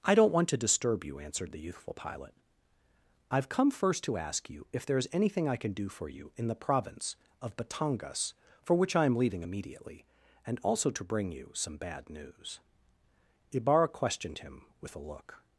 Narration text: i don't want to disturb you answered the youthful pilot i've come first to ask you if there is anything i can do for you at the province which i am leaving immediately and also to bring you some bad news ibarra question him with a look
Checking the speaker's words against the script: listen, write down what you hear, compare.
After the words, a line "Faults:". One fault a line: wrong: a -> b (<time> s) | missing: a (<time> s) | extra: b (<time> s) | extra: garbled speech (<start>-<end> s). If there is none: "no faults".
i don't want to disturb you answered the youthful pilot i've come first to ask you if there is anything i can do for you in the province of batangas for which i am leaving immediately and also to bring you some bad news ibarra questioned him with a look
Faults:
wrong: at -> in (6.3 s)
extra: of batangas for (7.4 s)
wrong: question -> questioned (13.9 s)